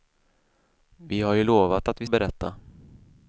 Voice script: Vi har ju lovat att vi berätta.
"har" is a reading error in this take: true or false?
false